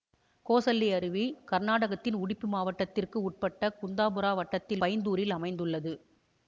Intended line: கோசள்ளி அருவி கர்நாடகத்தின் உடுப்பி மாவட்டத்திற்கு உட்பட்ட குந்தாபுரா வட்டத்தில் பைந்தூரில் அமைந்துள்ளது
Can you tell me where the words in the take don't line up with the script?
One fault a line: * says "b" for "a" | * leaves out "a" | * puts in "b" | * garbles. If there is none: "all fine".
all fine